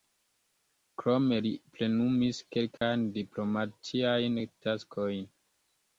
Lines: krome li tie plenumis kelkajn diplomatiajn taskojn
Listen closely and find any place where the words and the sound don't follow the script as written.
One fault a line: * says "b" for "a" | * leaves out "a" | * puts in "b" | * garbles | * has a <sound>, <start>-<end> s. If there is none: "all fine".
* leaves out "tie"
* has a dropout, 2.8-2.8 s